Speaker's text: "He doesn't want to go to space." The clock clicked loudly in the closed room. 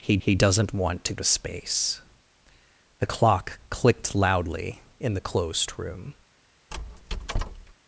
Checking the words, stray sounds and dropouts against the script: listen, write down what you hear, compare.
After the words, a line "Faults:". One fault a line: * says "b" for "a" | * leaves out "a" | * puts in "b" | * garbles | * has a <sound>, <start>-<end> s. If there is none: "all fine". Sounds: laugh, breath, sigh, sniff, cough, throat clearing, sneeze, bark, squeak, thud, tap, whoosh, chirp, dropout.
"He he doesn't want to to space." The clock clicked loudly in the closed room.
Faults:
* puts in "he"
* leaves out "go"
* has a squeak, 6.7-7.7 s